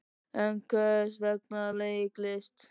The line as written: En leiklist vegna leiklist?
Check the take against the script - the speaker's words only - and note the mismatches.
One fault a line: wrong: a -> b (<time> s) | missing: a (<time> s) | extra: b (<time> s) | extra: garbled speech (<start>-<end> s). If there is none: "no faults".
wrong: leiklist -> hvers (0.7 s)